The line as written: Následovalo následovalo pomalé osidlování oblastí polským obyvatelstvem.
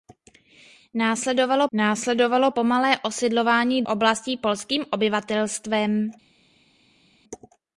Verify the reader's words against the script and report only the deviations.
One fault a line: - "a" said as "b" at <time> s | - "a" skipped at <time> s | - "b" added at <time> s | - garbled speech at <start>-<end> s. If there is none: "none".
none